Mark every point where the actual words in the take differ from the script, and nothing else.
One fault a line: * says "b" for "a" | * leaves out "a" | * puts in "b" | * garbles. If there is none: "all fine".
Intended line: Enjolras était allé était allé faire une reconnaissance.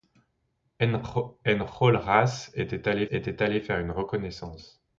all fine